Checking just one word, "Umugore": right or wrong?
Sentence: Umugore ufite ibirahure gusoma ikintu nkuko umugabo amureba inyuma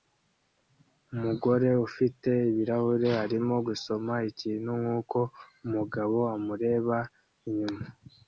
right